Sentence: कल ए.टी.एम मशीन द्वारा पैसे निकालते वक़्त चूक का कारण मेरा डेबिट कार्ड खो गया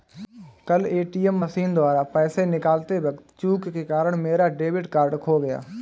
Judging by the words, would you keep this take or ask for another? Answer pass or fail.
fail